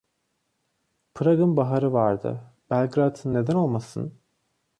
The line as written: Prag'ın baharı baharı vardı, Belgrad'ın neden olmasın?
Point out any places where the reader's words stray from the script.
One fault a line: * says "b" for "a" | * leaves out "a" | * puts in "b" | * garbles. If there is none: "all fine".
* leaves out "baharı"